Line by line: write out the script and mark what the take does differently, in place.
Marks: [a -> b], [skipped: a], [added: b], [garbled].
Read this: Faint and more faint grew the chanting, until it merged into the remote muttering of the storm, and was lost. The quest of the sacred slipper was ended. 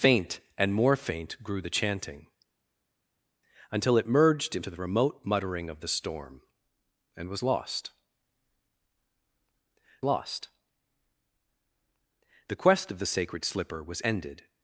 Faint and more faint grew the chanting, until it merged into the remote muttering of the storm, and was lost. [added: lost] The quest of the sacred slipper was ended.